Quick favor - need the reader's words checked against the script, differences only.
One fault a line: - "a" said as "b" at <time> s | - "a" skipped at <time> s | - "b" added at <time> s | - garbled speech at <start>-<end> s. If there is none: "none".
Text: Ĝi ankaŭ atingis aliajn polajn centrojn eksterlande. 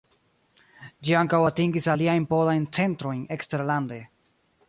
none